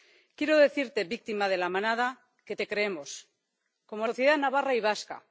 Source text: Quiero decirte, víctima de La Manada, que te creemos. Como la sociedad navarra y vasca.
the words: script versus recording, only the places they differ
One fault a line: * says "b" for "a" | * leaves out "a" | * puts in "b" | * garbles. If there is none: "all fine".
* leaves out "la"